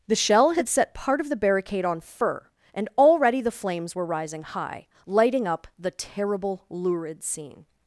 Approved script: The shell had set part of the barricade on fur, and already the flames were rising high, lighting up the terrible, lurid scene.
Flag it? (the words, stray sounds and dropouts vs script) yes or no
no